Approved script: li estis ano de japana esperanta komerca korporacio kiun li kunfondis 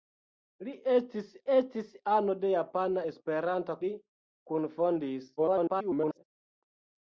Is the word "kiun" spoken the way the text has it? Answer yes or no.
no